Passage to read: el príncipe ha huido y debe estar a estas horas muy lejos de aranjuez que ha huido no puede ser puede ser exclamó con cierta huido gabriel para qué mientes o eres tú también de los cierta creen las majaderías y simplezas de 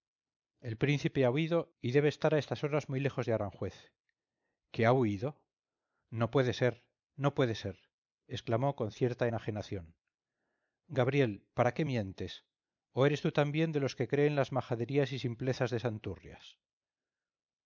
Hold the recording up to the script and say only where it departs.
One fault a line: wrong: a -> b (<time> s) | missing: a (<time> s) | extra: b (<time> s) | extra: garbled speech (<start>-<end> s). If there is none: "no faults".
extra: no (7.2 s)
wrong: huido -> enajenación (9.2 s)
wrong: cierta -> que (13.9 s)